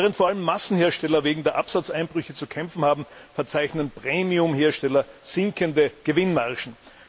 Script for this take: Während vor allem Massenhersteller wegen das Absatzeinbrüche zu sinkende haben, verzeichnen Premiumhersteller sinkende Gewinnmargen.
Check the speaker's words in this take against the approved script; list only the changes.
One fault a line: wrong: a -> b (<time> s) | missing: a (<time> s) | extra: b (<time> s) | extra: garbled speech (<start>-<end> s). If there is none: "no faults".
wrong: das -> der (1.4 s)
wrong: sinkende -> kämpfen (2.5 s)